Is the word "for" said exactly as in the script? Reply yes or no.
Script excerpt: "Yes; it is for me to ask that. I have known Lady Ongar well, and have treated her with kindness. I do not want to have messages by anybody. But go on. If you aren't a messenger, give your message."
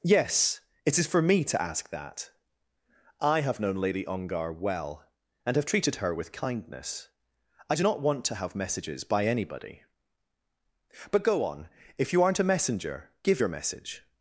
yes